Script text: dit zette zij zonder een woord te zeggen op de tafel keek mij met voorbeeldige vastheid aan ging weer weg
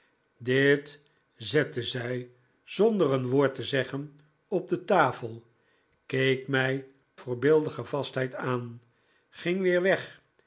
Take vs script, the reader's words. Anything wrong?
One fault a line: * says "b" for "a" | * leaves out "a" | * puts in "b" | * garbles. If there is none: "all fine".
* leaves out "met"